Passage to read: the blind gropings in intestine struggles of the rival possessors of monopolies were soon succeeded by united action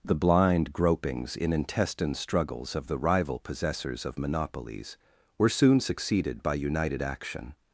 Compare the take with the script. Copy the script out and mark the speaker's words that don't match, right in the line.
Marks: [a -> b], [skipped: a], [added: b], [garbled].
the blind gropings in intestine struggles of the rival possessors of monopolies were soon succeeded by united action